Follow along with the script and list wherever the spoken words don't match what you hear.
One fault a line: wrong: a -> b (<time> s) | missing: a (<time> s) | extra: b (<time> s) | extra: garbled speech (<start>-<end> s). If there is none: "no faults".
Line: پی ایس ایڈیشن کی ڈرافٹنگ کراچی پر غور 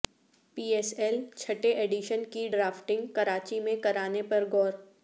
extra: ایل چھٹے (1.0 s)
extra: میں کرانے (3.6 s)